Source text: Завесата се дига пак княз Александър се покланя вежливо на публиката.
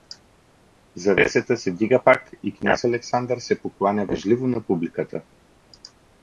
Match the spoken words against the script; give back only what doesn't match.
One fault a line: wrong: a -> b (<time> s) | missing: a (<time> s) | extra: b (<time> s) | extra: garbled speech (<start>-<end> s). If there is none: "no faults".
extra: и (2.4 s)